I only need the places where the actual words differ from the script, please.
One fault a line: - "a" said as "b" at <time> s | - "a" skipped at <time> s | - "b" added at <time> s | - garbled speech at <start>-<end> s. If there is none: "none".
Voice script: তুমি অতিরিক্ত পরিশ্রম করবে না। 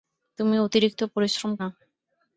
- "করবে" skipped at 1.5 s